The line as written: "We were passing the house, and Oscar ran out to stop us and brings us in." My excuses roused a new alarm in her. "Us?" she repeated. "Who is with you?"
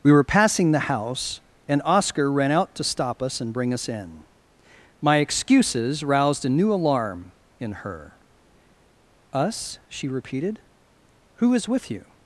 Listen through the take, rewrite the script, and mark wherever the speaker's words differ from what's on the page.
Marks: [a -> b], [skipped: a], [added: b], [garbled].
"We were passing the house, and Oscar ran out to stop us and [brings -> bring] us in." My excuses roused a new alarm in her. "Us?" she repeated. "Who is with you?"